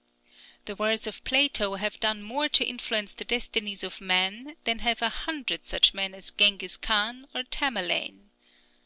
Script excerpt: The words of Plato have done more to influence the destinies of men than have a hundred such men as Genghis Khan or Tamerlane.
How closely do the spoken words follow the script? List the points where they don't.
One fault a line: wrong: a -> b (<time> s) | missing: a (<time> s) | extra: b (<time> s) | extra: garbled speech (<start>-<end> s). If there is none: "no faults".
no faults